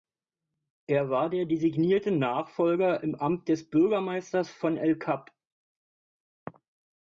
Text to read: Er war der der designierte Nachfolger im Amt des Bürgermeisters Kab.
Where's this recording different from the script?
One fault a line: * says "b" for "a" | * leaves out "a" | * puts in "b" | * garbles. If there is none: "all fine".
* leaves out "der"
* puts in "von el"